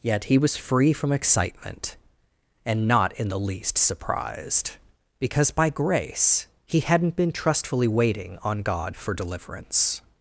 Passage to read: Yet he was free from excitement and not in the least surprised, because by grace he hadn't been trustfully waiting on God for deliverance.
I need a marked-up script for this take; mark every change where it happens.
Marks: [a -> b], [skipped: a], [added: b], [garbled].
Yet he was free from excitement and not in the least surprised, because by grace he hadn't been trustfully waiting on God for deliverance.